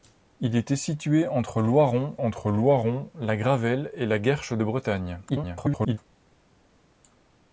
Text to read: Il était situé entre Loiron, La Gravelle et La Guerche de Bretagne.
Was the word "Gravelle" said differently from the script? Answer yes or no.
no